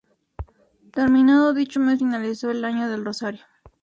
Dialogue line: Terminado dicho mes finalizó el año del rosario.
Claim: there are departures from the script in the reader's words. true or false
false